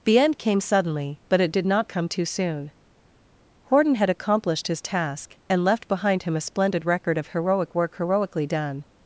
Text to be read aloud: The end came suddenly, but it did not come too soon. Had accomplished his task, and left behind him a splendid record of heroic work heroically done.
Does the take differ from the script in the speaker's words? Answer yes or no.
yes